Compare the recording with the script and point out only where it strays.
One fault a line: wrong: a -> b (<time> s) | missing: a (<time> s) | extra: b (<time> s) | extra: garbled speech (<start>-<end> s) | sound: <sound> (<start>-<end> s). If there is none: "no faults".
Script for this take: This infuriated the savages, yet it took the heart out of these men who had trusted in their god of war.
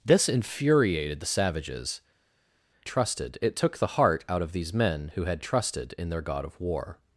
wrong: yet -> trusted (2.8 s)